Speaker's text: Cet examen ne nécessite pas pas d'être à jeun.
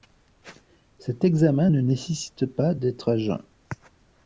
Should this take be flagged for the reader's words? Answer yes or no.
yes